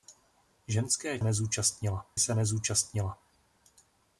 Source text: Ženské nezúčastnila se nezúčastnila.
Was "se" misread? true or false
false